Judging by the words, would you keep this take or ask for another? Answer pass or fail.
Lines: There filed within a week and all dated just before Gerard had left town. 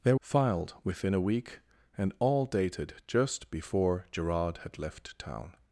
pass